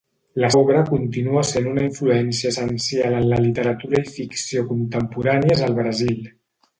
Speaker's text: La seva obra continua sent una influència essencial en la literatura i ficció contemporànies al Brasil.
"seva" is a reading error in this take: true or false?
true